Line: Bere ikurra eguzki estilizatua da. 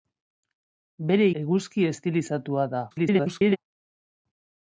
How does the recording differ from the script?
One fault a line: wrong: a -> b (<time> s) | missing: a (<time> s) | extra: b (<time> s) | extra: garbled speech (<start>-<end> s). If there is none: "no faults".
missing: ikurra (1.3 s)
extra: garbled speech (2.9-3.6 s)